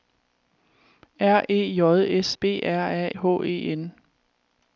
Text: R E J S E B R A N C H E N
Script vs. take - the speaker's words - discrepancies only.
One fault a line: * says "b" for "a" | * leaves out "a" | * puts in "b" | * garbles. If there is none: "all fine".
* leaves out "E"
* leaves out "N C"